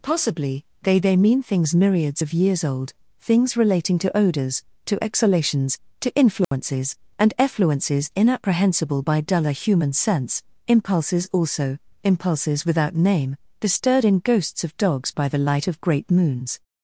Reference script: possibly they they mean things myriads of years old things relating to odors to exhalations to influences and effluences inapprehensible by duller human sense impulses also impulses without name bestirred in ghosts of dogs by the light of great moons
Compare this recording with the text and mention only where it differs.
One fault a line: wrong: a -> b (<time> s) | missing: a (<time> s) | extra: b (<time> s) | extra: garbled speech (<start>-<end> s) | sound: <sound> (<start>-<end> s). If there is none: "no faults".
sound: dropout (6.4-6.5 s)